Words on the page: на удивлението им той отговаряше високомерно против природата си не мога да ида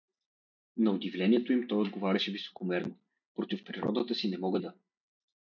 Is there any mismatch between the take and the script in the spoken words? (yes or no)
yes